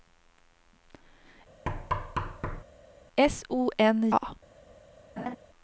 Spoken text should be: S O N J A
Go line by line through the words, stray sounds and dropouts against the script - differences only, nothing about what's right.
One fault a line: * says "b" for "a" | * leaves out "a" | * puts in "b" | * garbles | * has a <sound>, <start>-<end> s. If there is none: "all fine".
* has a thud, 1.7-2.6 s
* leaves out "J"
* has a laugh, 5.2-5.4 s